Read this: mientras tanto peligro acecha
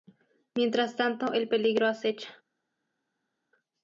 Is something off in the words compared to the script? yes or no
yes